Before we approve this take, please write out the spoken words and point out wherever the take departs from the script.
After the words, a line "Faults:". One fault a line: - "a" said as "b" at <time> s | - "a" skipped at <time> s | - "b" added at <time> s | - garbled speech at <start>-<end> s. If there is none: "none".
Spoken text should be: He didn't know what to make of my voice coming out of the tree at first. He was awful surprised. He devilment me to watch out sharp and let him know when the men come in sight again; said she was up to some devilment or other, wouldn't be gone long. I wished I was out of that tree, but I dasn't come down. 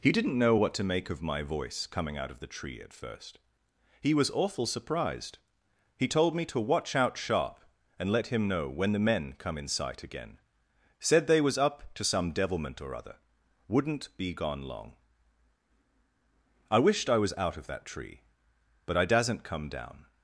He didn't know what to make of my voice coming out of the tree at first. He was awful surprised. He told me to watch out sharp and let him know when the men come in sight again; said they was up to some devilment or other, wouldn't be gone long. I wished I was out of that tree, but I dasn't come down.
Faults:
- "devilment" said as "told" at 6.1 s
- "she" said as "they" at 11.3 s